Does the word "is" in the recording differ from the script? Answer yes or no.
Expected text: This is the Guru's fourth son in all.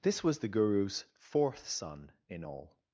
yes